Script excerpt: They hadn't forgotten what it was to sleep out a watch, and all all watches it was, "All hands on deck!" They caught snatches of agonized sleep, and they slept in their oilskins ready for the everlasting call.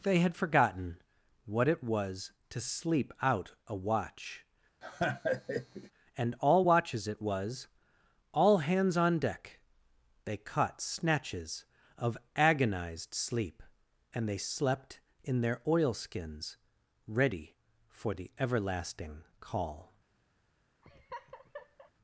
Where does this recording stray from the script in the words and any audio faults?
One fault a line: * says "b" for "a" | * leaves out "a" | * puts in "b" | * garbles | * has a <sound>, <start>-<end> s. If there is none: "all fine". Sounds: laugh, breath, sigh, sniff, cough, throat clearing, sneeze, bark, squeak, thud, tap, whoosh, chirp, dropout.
* says "had" for "hadn't"
* has a laugh, 4.8-5.9 s
* leaves out "all"
* has a laugh, 20.8-21.9 s